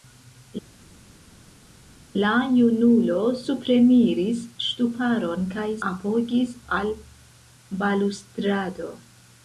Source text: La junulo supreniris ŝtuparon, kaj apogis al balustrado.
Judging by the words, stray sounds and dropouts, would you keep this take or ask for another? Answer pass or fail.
pass